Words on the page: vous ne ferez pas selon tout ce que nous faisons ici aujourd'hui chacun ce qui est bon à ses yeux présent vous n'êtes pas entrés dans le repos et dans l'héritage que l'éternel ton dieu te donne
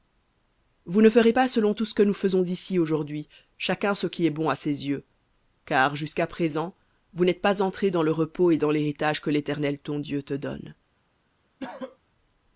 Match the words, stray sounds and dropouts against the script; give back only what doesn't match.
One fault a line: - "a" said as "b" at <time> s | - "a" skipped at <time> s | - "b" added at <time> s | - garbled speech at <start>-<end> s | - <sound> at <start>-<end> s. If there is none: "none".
- "car jusqu'à" added at 5.6 s
- cough at 11.6-12.0 s